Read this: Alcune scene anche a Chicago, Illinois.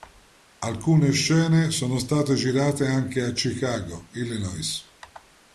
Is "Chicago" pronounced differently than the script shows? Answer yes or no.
no